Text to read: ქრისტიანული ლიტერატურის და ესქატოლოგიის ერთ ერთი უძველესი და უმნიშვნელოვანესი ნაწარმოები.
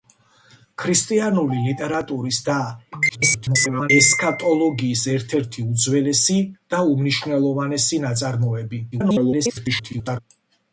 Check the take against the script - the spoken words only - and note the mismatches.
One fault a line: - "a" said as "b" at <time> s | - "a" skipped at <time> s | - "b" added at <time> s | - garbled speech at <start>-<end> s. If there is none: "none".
- garbled speech at 3.1-3.9 s
- garbled speech at 8.9-10.2 s